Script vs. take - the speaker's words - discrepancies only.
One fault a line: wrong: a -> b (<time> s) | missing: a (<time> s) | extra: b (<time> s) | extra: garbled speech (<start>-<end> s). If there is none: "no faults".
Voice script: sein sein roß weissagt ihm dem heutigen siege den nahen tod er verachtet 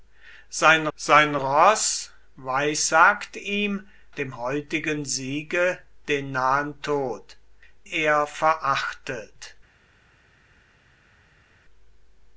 no faults